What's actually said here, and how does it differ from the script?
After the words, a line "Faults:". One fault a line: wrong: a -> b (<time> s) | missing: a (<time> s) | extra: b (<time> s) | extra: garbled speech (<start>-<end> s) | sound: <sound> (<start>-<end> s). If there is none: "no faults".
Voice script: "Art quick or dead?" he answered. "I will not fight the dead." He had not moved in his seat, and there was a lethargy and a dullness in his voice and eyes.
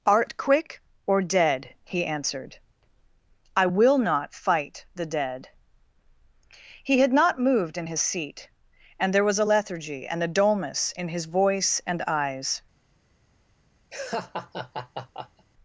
"Art quick or dead?" he answered. "I will not fight the dead." He had not moved in his seat, and there was a lethargy and a dullness in his voice and eyes.
Faults:
sound: laugh (13.9-15.5 s)